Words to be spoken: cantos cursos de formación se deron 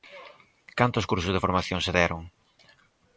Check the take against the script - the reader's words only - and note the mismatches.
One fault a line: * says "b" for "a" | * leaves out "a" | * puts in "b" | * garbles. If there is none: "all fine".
all fine